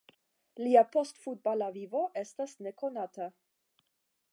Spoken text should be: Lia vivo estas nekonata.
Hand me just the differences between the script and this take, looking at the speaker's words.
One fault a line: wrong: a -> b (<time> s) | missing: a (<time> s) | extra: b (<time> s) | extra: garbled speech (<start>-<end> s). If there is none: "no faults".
extra: postfutbala (0.9 s)